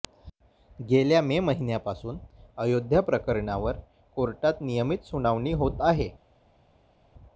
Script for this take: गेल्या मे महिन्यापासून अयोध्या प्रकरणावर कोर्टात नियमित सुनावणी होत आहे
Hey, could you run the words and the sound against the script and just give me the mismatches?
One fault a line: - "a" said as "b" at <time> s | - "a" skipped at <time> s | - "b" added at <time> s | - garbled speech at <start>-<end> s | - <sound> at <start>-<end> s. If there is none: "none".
none